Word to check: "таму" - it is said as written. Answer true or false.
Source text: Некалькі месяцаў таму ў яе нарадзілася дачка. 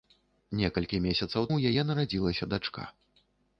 false